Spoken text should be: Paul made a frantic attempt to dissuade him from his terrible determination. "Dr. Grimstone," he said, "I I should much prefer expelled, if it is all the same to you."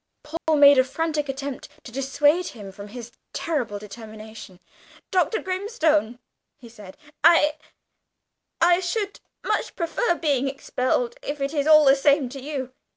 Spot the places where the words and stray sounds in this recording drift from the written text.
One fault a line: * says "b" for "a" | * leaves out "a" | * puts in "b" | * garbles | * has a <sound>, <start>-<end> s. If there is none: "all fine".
* has a dropout, 0.4-0.5 s
* puts in "being"